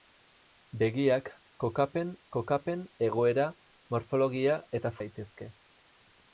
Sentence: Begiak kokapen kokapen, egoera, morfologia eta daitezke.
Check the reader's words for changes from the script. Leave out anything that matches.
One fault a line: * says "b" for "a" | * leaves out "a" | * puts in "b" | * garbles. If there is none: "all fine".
all fine